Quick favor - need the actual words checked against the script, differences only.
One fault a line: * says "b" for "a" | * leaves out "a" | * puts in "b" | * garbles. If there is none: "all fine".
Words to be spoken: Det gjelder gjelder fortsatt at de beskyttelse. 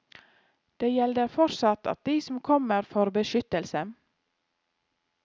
* leaves out "gjelder"
* puts in "som kommer får"